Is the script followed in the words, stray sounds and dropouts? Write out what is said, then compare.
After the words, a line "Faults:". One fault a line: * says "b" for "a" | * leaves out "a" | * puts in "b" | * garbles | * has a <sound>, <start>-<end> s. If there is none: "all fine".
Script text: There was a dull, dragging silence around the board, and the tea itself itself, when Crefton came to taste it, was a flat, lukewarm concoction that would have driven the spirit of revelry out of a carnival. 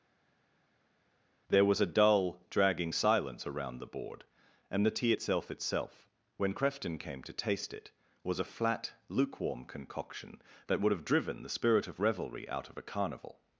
There was a dull, dragging silence around the board, and the tea itself itself, when Crefton came to taste it, was a flat, lukewarm concoction that would have driven the spirit of revelry out of a carnival.
Faults:
all fine